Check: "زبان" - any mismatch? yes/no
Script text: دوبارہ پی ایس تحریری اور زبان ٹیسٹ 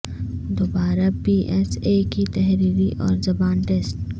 no